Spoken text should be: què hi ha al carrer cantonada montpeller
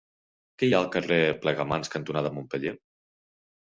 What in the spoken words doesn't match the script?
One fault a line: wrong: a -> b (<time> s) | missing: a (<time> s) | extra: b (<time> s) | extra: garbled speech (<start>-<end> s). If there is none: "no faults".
extra: plegamans (1.5 s)